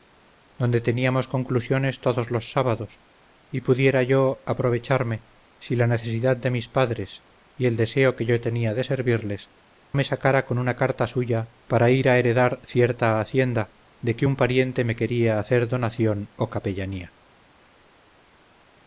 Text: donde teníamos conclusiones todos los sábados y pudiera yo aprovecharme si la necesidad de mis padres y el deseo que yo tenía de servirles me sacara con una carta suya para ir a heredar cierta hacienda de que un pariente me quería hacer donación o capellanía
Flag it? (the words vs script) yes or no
no